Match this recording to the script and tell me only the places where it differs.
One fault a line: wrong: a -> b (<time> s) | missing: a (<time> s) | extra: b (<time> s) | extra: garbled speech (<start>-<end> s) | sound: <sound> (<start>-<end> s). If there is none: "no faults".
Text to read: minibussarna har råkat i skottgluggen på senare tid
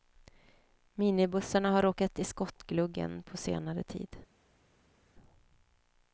no faults